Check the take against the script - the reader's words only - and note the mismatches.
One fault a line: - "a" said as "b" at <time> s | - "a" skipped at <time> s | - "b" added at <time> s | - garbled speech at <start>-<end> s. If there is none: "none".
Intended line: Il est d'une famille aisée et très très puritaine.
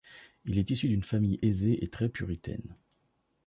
- "issu" added at 0.7 s
- "très" skipped at 2.1 s